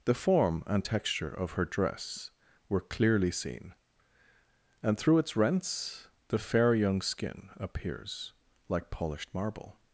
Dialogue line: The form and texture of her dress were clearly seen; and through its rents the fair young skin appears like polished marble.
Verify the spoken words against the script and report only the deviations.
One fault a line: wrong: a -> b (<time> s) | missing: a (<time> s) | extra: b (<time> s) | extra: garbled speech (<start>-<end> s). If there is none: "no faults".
no faults